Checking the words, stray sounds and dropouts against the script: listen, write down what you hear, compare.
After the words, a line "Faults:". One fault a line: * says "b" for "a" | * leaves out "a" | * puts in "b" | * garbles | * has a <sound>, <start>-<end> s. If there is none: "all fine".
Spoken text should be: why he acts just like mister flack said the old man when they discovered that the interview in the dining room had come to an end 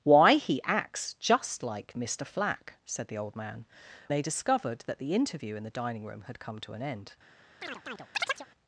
why he acts just like mister flack said the old man they discovered that the interview in the dining room had come to an end
Faults:
* leaves out "when"
* has a chirp, 7.6-8.5 s